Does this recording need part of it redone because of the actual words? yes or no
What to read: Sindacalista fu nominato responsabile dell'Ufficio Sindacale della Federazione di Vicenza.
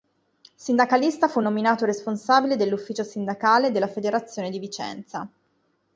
no